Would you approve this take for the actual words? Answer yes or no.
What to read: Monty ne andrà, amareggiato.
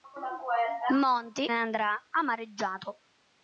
yes